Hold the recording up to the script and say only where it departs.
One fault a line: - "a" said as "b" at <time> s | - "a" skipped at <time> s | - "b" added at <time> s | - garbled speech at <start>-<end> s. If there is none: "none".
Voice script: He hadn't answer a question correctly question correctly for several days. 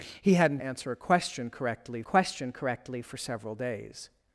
none